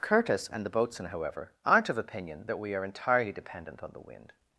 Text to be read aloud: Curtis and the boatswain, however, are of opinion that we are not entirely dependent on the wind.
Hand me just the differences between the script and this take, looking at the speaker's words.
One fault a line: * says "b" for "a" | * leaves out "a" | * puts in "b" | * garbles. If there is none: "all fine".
* says "aren't" for "are"
* leaves out "not"